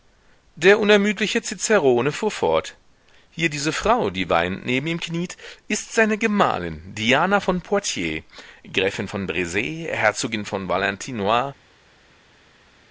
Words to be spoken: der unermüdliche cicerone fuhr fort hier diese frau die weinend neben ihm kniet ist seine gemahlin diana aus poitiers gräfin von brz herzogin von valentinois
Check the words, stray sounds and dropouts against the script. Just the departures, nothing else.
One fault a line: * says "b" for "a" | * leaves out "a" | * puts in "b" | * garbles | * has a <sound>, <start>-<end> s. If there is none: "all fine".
* says "von" for "aus"